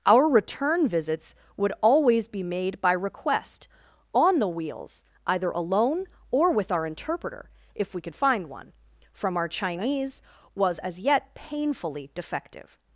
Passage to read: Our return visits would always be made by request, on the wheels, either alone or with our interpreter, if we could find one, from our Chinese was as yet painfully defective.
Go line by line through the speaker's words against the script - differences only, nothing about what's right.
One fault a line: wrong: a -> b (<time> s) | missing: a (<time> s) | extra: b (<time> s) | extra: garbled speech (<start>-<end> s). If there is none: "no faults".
no faults